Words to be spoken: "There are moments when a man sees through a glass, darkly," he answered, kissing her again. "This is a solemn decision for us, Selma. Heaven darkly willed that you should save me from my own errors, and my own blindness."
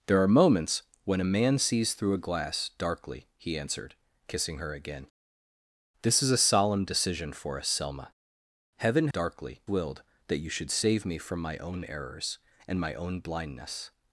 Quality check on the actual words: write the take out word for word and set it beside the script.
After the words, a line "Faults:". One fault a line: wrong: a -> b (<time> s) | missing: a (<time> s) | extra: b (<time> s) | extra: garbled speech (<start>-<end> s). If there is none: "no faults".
"There are moments when a man sees through a glass, darkly," he answered, kissing her again. "This is a solemn decision for us, Selma. Heaven darkly willed that you should save me from my own errors, and my own blindness."
Faults:
no faults